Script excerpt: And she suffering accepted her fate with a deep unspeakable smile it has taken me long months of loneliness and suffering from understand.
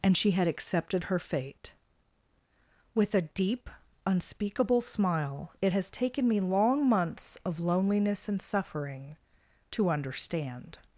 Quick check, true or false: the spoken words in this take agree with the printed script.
false